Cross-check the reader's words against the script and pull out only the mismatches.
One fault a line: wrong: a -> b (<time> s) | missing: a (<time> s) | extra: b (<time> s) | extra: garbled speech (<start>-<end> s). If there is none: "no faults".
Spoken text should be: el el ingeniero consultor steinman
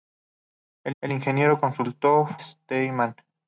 no faults